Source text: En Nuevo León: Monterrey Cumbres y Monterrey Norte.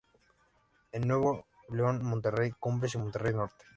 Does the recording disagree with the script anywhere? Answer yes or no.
no